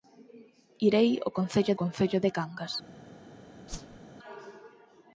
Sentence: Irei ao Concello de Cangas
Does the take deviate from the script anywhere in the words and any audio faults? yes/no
yes